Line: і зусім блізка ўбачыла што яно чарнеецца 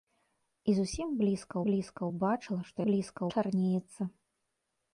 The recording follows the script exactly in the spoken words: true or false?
false